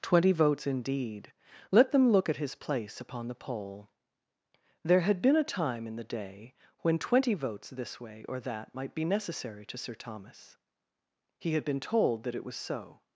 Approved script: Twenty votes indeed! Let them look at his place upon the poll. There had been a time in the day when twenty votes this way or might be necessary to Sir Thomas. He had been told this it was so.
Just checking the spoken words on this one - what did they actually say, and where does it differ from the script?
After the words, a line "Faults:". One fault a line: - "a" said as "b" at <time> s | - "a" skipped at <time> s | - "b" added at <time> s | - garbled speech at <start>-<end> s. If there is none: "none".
Twenty votes indeed! Let them look at his place upon the poll. There had been a time in the day when twenty votes this way or that might be necessary to Sir Thomas. He had been told that it was so.
Faults:
- "that" added at 8.4 s
- "this" said as "that" at 12.2 s